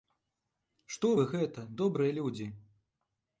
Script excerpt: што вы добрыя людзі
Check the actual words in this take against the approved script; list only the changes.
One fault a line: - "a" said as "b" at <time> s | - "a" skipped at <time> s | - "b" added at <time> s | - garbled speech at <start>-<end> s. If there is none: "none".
- "гэта" added at 1.3 s